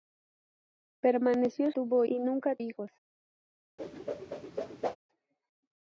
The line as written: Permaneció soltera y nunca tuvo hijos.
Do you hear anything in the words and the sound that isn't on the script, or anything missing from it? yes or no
yes